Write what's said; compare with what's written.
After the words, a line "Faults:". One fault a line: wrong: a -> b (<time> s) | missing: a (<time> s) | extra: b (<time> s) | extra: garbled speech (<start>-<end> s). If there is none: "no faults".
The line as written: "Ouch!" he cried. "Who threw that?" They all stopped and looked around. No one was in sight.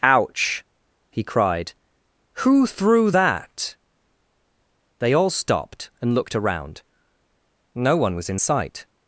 "Ouch!" he cried. "Who threw that?" They all stopped and looked around. No one was in sight.
Faults:
no faults